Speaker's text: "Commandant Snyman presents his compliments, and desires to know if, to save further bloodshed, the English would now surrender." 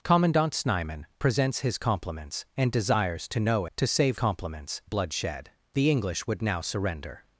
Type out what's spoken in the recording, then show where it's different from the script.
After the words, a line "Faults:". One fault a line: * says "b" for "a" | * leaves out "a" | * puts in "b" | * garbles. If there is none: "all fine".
"Commandant Snyman presents his compliments, and desires to know to save compliments bloodshed, the English would now surrender."
Faults:
* leaves out "if"
* says "compliments" for "further"